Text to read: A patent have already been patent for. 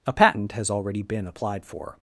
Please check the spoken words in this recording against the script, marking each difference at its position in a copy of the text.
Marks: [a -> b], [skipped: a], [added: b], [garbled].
A patent [have -> has] already been [patent -> applied] for.